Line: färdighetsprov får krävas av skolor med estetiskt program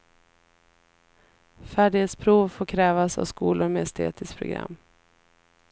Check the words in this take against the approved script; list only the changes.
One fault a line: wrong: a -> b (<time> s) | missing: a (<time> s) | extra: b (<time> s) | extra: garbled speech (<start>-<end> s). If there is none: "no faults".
no faults